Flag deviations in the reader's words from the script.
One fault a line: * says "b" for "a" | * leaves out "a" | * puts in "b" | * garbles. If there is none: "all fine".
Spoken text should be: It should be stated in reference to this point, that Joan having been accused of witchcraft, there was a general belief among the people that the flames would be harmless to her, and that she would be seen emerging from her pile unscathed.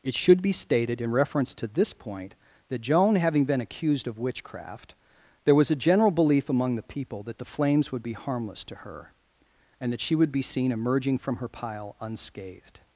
all fine